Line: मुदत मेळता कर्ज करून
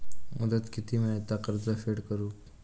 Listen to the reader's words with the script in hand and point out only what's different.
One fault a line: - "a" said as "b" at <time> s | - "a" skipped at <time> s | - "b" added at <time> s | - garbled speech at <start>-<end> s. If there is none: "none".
- "किती" added at 0.7 s
- "फेड" added at 1.9 s